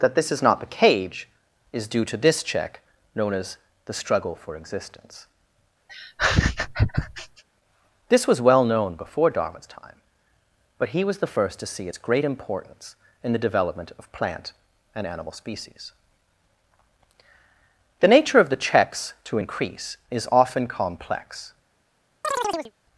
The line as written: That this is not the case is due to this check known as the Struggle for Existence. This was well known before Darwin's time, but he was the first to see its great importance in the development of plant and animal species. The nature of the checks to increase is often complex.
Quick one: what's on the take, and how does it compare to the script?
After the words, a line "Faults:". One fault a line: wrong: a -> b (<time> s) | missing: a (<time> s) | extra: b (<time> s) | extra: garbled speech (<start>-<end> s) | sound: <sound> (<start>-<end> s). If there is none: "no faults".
That this is not the cage is due to this check known as the Struggle for Existence. This was well known before Darwin's time, but he was the first to see its great importance in the development of plant and animal species. The nature of the checks to increase is often complex.
Faults:
wrong: case -> cage (0.8 s)
sound: laugh (5.9-7.4 s)
sound: chirp (22.2-22.7 s)